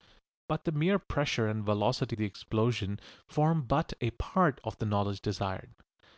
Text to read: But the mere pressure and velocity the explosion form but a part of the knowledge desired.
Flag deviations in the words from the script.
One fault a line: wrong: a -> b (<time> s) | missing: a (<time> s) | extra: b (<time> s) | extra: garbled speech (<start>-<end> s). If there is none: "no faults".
no faults